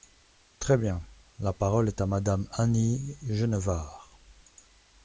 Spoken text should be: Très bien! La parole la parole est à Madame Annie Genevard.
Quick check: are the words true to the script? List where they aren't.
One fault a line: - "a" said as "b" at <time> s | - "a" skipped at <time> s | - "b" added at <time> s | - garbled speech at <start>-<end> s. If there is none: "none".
- "la parole" skipped at 1.9 s